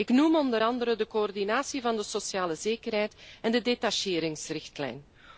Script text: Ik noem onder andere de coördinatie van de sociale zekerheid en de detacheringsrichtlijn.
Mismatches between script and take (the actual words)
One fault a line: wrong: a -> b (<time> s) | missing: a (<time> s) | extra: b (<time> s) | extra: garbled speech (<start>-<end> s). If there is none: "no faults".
no faults